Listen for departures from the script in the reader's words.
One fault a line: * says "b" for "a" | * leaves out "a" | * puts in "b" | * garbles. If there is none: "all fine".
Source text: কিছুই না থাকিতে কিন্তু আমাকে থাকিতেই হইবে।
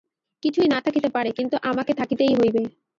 * puts in "পারে"